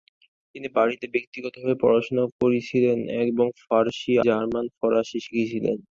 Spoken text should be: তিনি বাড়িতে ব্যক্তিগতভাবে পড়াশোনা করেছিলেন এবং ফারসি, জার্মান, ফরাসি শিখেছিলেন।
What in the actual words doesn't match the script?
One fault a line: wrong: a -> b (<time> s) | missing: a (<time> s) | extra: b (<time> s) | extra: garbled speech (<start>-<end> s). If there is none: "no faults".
no faults